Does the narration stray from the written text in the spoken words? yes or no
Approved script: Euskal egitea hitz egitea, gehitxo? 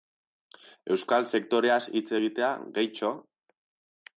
yes